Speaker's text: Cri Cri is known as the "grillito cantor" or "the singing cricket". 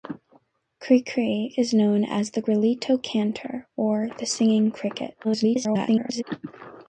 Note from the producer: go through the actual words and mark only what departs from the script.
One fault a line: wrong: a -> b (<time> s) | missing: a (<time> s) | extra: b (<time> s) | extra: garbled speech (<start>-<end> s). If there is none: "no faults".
extra: garbled speech (5.2-6.2 s)